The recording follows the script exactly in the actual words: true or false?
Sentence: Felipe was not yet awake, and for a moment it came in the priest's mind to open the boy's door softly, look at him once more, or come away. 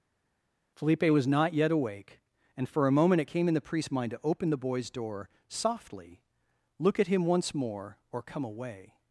true